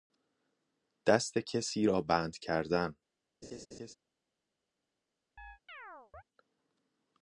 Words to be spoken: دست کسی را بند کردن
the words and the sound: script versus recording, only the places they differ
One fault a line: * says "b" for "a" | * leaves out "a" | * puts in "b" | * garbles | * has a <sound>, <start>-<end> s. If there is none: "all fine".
* has a laugh, 3.4-3.9 s
* has a chirp, 5.4-6.2 s